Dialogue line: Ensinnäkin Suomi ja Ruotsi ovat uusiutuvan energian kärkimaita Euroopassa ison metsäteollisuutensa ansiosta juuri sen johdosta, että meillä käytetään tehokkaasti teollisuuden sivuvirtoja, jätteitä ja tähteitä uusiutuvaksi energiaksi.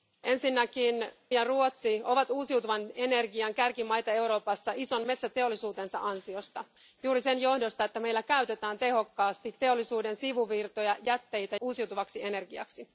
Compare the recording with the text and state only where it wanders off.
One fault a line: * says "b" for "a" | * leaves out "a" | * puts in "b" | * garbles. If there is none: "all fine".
* leaves out "Suomi"
* leaves out "ja tähteitä"